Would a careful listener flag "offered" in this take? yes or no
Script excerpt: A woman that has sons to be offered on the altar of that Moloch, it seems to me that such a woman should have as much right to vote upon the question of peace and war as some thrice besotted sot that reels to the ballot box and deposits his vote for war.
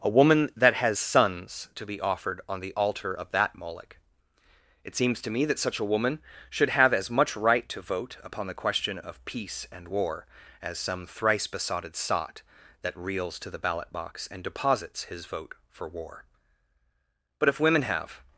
no